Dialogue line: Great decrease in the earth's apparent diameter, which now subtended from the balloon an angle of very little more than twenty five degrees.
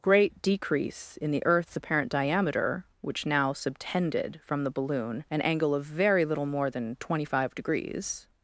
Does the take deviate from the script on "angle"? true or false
false